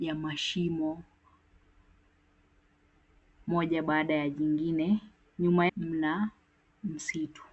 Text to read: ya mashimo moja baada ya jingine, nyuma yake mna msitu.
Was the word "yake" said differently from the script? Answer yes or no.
yes